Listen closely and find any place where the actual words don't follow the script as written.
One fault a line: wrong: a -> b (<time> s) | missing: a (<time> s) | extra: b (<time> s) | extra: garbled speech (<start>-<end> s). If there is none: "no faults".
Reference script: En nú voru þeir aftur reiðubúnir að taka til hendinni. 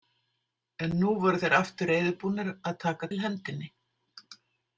no faults